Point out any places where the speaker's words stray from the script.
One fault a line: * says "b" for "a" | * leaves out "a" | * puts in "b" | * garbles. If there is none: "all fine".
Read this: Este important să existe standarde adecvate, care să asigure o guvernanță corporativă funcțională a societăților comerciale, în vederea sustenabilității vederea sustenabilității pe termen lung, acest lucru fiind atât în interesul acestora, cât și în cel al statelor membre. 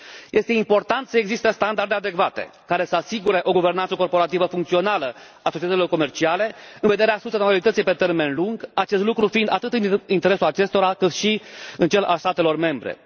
* leaves out "vederea sustenabilității"